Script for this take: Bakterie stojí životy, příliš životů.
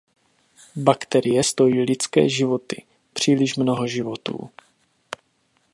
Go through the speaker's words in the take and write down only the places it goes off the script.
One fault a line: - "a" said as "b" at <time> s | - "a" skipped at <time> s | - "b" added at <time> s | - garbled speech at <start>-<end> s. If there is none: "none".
- "lidské" added at 1.8 s
- "mnoho" added at 3.6 s